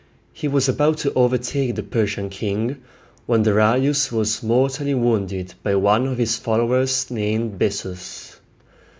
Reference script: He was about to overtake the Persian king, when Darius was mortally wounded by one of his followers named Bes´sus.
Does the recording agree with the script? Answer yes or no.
yes